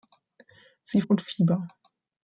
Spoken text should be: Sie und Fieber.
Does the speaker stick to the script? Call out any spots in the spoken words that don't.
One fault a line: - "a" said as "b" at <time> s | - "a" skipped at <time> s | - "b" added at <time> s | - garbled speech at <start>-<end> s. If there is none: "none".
none